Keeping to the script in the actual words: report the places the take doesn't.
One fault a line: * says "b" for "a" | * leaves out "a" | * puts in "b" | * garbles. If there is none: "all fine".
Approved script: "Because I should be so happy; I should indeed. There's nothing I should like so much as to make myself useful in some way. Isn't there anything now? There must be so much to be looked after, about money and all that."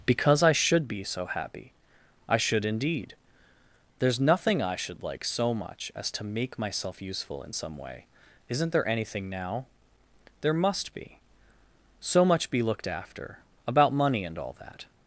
* leaves out "to"